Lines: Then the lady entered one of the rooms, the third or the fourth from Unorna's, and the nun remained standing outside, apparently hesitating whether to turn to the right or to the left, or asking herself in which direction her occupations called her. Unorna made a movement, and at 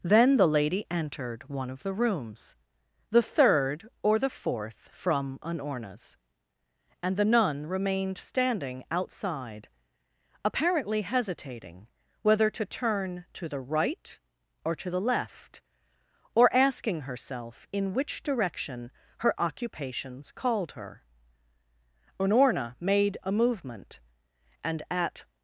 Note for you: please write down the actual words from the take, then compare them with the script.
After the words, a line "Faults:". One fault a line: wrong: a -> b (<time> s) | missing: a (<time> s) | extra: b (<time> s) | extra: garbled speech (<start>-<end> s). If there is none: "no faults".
Then the lady entered one of the rooms, the third or the fourth from Unorna's, and the nun remained standing outside, apparently hesitating whether to turn to the right or to the left, or asking herself in which direction her occupations called her. Unorna made a movement, and at
Faults:
no faults